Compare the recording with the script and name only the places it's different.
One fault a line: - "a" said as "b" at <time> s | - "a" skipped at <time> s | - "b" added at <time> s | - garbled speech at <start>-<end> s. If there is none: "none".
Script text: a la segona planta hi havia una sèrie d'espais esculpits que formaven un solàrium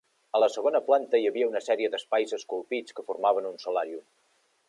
none